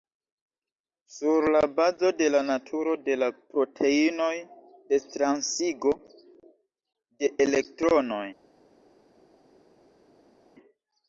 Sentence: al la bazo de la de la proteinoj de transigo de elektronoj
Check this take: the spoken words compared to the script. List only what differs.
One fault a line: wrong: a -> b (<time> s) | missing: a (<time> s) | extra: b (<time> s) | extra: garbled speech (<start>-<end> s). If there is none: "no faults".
wrong: al -> sur (1.1 s)
extra: naturo (2.5 s)